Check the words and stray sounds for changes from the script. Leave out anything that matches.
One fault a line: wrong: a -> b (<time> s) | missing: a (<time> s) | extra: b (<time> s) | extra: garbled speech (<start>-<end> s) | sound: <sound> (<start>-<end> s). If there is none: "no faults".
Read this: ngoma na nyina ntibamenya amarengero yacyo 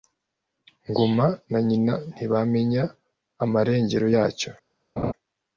sound: laugh (5.0-5.1 s)